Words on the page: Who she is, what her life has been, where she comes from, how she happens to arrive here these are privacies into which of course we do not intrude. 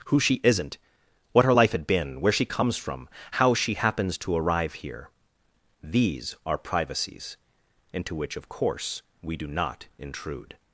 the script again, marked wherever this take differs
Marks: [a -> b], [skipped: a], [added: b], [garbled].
Who she [is, -> isn't] what her life [has -> had] been, where she comes from, how she happens to arrive here these are privacies into which of course we do not intrude.